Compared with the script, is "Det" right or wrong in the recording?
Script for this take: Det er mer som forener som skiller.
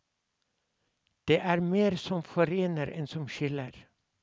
right